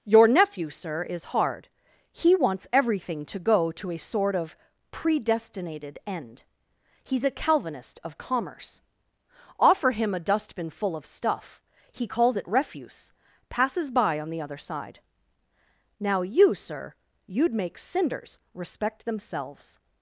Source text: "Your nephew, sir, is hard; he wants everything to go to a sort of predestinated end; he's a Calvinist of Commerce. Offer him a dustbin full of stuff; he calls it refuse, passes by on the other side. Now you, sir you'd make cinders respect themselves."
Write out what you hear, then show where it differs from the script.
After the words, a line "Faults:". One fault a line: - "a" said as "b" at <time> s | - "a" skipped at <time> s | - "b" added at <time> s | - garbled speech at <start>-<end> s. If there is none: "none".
"Your nephew, sir, is hard; he wants everything to go to a sort of predestinated end; he's a Calvinist of Commerce. Offer him a dustbin full of stuff; he calls it refuse, passes by on the other side. Now you, sir you'd make cinders respect themselves."
Faults:
none